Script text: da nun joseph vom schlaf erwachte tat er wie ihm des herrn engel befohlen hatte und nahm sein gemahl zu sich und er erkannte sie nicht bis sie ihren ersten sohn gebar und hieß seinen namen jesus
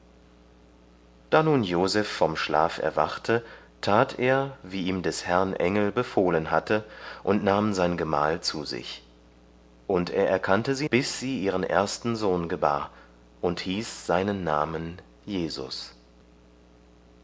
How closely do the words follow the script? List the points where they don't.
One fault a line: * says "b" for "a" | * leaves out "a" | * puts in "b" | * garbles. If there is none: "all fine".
* leaves out "nicht"